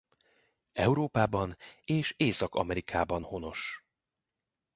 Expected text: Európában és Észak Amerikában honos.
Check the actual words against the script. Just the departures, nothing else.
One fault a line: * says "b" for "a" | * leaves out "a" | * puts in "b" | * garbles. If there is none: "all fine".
all fine